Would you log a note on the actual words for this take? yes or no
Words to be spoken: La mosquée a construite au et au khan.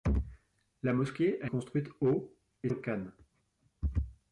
no